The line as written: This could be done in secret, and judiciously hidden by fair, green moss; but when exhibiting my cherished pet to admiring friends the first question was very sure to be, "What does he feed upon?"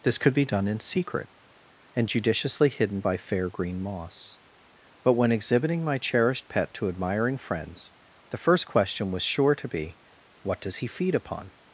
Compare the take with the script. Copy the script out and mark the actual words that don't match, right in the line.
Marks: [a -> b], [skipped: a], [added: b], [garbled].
This could be done in secret, and judiciously hidden by fair, green moss; but when exhibiting my cherished pet to admiring friends the first question was [skipped: very] sure to be, "What does he feed upon?"